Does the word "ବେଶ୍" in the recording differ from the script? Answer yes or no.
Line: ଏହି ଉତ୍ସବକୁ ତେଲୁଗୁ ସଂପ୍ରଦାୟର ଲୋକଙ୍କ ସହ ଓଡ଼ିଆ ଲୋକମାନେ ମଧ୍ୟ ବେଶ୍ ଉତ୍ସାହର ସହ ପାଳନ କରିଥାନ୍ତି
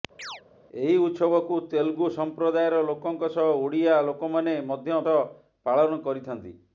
yes